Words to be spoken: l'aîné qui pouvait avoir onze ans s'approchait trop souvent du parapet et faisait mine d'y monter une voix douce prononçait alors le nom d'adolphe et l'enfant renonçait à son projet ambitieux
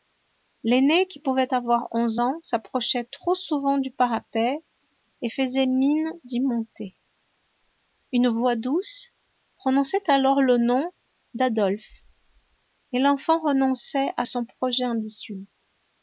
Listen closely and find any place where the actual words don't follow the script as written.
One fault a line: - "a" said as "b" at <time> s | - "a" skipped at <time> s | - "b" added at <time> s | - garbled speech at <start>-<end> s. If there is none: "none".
none